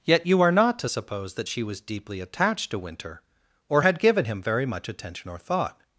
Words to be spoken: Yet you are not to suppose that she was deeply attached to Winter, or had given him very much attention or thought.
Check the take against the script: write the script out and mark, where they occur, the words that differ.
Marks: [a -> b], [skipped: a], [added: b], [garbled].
Yet you are not to suppose that she was deeply attached to Winter, or had given him very much attention or thought.